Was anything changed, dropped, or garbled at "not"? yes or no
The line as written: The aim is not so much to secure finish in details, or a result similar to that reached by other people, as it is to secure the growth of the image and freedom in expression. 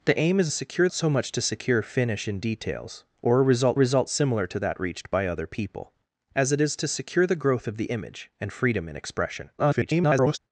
yes